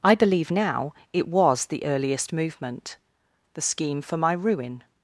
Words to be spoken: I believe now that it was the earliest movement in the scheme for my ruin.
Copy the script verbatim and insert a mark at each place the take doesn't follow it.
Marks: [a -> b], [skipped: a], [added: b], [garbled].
I believe now [skipped: that] it was the earliest movement [skipped: in] the scheme for my ruin.